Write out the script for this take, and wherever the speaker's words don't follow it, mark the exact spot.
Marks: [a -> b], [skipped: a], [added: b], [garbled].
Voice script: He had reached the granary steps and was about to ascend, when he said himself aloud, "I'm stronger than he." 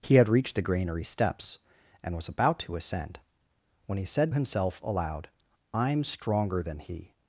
He had reached the granary steps and was about to ascend, when he said himself aloud, "I'm stronger than he."